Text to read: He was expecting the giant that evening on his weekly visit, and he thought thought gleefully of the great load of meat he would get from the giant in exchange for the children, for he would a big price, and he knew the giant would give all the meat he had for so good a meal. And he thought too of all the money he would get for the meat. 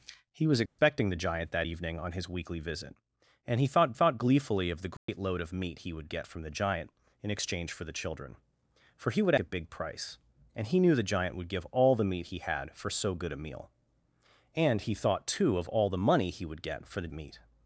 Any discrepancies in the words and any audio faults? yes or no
yes